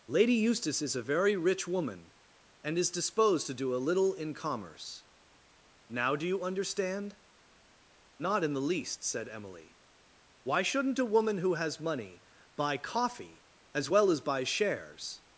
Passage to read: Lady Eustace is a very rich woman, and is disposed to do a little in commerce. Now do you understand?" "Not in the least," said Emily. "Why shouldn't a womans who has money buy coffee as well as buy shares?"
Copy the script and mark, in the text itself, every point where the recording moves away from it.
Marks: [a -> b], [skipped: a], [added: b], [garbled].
Lady Eustace is a very rich woman, and is disposed to do a little in commerce. Now do you understand?" "Not in the least," said Emily. "Why shouldn't a [womans -> woman] who has money buy coffee as well as buy shares?"